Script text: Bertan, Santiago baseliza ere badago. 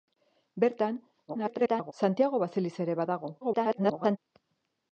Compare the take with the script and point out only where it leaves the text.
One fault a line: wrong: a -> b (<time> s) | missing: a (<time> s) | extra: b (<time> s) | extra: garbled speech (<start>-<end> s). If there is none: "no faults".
extra: garbled speech (1.3-1.9 s)
extra: garbled speech (3.4-4.2 s)